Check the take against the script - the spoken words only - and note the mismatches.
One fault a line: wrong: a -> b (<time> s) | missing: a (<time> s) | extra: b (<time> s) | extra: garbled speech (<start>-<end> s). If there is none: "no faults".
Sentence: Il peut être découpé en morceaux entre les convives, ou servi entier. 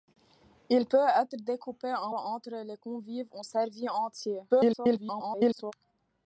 missing: morceaux (2.1 s)
extra: garbled speech (4.5-5.7 s)